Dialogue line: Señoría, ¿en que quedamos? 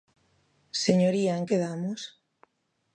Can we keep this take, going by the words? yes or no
no